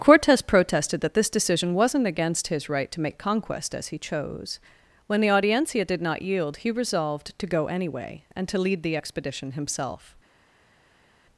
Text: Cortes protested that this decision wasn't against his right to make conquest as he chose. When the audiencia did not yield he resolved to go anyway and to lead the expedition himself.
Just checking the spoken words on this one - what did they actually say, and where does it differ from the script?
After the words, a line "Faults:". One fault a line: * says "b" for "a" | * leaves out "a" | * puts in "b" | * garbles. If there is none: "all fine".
Cortes protested that this decision wasn't against his right to make conquest as he chose. When the audiencia did not yield he resolved to go anyway and to lead the expedition himself.
Faults:
all fine